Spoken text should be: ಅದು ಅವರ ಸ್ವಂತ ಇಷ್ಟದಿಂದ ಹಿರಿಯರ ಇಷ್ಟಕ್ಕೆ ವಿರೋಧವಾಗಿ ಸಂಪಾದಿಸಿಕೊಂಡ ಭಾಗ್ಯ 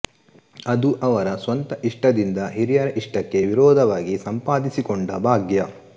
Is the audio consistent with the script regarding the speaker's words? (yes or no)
yes